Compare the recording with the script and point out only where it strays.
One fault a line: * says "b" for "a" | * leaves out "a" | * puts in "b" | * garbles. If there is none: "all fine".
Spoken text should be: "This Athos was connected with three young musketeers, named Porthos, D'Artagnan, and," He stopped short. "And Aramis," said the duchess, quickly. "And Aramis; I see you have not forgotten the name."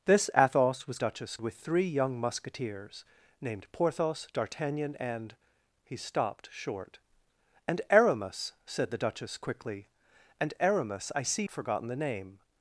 * says "duchess" for "connected"
* leaves out "you have not"